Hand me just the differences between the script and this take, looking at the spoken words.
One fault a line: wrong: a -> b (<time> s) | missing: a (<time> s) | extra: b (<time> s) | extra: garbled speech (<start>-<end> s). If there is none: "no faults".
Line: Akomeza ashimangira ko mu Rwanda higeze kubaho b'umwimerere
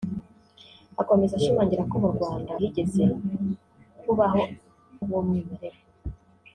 no faults